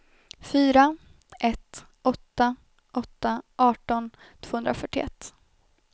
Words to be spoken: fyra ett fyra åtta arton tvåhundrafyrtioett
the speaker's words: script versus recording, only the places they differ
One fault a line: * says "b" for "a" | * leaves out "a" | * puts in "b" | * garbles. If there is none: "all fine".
* says "åtta" for "fyra"